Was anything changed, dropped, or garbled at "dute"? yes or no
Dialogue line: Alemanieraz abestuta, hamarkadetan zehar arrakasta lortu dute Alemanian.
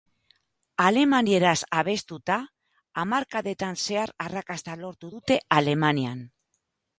no